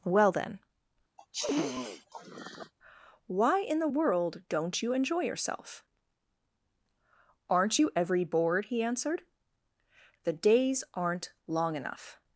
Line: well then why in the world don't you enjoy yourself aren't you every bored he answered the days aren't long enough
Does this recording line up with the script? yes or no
yes